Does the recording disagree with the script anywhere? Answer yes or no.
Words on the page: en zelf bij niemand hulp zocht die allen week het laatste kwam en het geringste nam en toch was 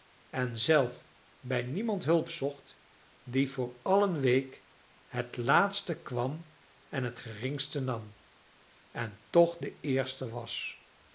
yes